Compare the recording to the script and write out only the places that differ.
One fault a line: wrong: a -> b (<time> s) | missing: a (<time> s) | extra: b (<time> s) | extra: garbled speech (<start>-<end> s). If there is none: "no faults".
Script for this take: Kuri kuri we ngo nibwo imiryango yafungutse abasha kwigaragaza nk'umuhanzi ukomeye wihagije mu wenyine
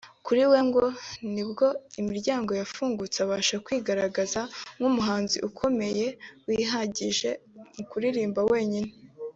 missing: kuri (0.4 s)
extra: kuririmba (7.9 s)